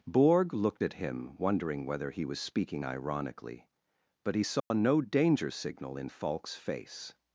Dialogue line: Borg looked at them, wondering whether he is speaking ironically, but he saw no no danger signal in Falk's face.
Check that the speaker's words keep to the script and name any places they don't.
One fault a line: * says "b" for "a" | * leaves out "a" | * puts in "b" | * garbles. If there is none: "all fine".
* says "him" for "them"
* says "was" for "is"
* leaves out "no"